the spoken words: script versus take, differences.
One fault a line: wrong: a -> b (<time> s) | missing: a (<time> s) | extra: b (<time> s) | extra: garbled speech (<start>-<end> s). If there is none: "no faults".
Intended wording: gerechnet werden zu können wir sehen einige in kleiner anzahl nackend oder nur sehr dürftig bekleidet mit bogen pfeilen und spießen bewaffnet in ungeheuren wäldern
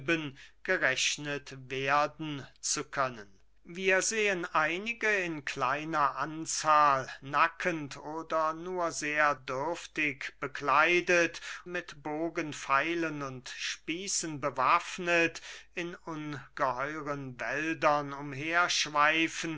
no faults